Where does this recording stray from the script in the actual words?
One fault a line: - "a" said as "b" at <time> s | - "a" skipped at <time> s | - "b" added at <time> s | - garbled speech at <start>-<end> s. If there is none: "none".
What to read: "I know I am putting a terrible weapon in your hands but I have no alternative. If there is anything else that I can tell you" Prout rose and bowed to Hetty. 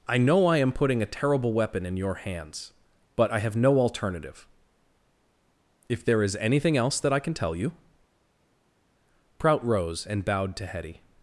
none